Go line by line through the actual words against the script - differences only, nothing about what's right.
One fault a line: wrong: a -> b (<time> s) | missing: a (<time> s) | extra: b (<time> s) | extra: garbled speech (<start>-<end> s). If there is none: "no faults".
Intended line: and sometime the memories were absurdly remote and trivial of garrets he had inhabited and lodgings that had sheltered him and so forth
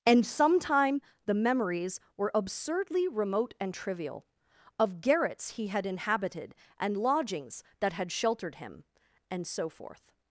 no faults